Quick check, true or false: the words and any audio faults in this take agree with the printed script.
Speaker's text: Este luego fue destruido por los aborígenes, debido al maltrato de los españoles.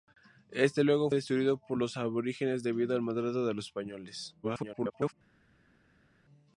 false